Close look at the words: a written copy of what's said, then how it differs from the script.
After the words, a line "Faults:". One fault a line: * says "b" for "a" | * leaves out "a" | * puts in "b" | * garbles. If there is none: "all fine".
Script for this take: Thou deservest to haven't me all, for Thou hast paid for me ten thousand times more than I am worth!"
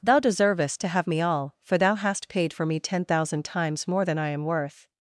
Thou deservest to have me all, for Thou hast paid for me ten thousand times more than I am worth!"
Faults:
* says "have" for "haven't"